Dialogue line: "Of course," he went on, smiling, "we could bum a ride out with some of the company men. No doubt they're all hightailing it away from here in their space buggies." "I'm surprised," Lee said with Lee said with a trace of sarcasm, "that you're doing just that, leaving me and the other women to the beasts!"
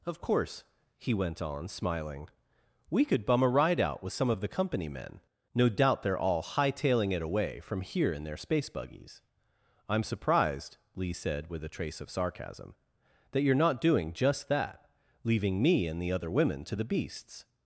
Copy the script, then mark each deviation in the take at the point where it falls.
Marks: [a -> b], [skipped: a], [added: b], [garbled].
"Of course," he went on, smiling, "we could bum a ride out with some of the company men. No doubt they're all hightailing it away from here in their space buggies." "I'm surprised," Lee said with [skipped: Lee said with] a trace of sarcasm, "that you're [added: not] doing just that, leaving me and the other women to the beasts!"